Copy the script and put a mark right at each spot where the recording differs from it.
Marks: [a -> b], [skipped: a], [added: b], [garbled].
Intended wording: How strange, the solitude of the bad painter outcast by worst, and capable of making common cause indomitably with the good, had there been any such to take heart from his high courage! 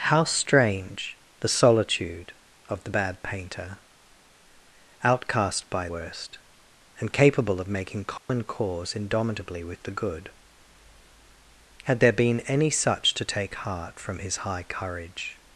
How strange, the solitude of the bad painter outcast by worst, and capable of making common cause indomitably with the good, had there been any such to take heart from his high courage!